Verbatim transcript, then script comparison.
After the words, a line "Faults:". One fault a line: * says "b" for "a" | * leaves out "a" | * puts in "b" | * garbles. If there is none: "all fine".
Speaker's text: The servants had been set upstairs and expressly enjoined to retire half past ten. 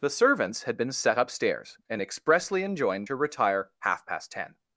The servants had been set upstairs and expressly enjoined to retire half past ten.
Faults:
all fine